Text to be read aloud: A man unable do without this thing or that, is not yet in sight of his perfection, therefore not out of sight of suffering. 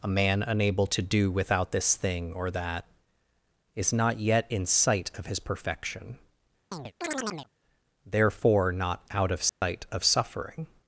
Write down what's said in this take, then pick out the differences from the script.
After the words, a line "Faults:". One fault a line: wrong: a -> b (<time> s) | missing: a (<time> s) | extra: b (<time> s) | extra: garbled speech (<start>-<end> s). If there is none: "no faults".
A man unable to do without this thing or that, is not yet in sight of his perfection, therefore not out of sight of suffering.
Faults:
extra: to (0.9 s)